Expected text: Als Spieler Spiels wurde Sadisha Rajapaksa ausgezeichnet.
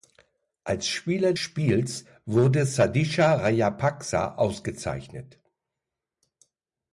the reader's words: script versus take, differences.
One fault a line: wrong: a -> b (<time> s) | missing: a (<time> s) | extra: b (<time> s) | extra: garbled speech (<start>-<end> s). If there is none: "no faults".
no faults